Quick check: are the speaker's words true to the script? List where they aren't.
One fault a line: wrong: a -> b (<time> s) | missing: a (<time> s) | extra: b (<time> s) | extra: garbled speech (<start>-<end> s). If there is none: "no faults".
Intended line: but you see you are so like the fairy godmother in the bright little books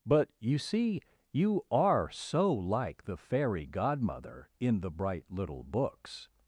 no faults